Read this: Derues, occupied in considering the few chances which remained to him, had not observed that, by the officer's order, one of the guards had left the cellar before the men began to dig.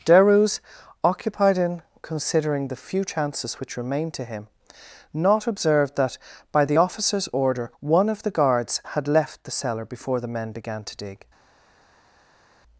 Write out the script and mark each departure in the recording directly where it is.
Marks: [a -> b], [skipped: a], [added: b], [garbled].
Derues, occupied in considering the few chances which remained to him, [skipped: had] not observed that, by the officer's order, one of the guards had left the cellar before the men began to dig.